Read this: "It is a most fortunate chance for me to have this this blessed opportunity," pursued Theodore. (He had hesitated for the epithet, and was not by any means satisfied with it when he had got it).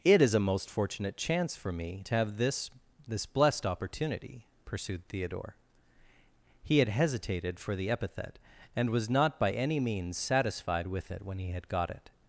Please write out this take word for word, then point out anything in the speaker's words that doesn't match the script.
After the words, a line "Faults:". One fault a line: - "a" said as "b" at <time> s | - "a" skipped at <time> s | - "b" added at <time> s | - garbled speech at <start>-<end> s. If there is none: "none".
"It is a most fortunate chance for me to have this this blessed opportunity," pursued Theodore. (He had hesitated for the epithet, and was not by any means satisfied with it when he had got it).
Faults:
none